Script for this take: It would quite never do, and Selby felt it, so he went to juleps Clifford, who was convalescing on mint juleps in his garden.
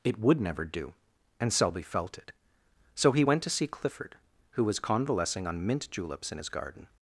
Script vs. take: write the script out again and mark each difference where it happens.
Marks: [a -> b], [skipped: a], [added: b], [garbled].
It would [skipped: quite] never do, and Selby felt it, so he went to [juleps -> see] Clifford, who was convalescing on mint juleps in his garden.